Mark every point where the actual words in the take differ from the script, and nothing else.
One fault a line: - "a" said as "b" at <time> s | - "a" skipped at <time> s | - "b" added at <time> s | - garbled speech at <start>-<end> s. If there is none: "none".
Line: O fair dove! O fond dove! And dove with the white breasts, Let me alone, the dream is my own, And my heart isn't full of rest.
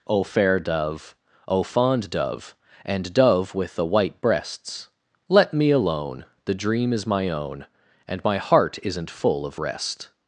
none